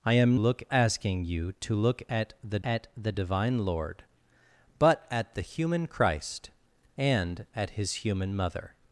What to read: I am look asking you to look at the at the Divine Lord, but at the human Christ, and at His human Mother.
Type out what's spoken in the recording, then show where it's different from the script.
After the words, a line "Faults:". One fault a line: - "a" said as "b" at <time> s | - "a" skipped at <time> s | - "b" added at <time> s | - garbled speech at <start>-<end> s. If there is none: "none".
I am look asking you to look at the at the Divine Lord, but at the human Christ, and at His human Mother.
Faults:
none